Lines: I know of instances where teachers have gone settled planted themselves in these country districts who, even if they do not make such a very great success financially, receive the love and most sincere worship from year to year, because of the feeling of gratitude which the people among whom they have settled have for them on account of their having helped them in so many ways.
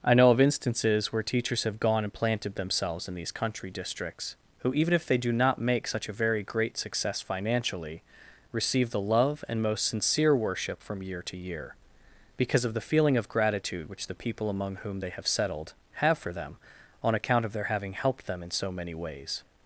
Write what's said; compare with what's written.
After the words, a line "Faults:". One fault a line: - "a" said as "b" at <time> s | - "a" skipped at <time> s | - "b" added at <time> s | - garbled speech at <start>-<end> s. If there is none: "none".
I know of instances where teachers have gone and planted themselves in these country districts who, even if they do not make such a very great success financially, receive the love and most sincere worship from year to year, because of the feeling of gratitude which the people among whom they have settled have for them on account of their having helped them in so many ways.
Faults:
- "settled" said as "and" at 2.0 s